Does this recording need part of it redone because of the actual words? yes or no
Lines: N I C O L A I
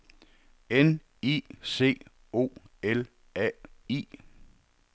no